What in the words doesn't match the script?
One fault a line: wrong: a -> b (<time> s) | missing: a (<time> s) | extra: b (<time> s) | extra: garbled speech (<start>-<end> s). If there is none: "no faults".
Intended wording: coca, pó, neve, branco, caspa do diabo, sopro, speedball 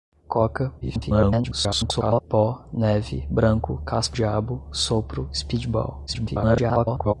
extra: garbled speech (0.8-2.2 s)
missing: do (4.2 s)
extra: garbled speech (6.1-7.1 s)